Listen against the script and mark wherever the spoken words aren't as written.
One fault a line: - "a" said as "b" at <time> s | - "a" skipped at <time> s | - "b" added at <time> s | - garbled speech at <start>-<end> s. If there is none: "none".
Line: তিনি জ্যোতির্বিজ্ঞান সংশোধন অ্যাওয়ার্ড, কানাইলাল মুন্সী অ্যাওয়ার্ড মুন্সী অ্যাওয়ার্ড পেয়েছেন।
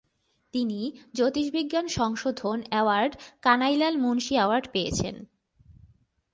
- "মুন্সী অ্যাওয়ার্ড" skipped at 4.7 s